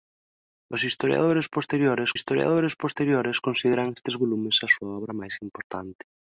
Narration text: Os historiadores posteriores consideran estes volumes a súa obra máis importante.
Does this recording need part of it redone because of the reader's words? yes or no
yes